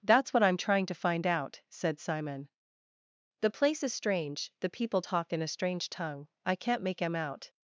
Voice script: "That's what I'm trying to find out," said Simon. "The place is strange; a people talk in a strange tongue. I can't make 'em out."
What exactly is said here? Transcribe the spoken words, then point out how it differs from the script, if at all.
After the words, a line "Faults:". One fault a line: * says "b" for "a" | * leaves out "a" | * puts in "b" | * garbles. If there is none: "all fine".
"That's what I'm trying to find out," said Simon. "The place is strange; the people talk in a strange tongue. I can't make 'em out."
Faults:
* says "the" for "a"